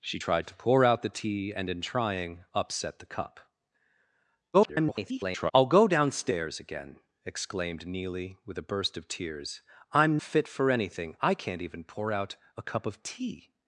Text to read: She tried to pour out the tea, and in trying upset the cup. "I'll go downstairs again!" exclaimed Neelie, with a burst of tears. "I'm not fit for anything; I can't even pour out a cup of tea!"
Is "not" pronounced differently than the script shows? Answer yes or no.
yes